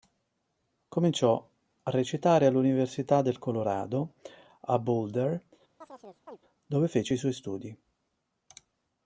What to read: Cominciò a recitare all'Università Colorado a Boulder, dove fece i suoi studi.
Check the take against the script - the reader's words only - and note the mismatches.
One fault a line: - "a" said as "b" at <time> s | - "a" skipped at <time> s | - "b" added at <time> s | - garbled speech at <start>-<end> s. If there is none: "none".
- "del" added at 3.2 s